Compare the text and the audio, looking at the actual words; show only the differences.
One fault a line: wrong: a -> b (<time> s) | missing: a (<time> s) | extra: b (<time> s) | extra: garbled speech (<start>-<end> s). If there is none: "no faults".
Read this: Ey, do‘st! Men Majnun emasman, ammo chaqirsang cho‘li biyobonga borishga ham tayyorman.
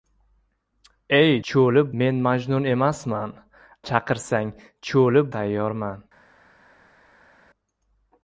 wrong: do‘st -> cho‘li (1.5 s)
missing: ammo (3.3 s)
missing: biyobonga borishga ham (5.2 s)